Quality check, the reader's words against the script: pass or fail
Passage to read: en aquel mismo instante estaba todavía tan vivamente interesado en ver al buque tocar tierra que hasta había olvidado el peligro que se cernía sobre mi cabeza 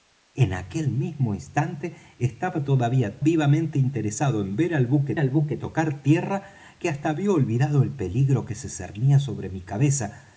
fail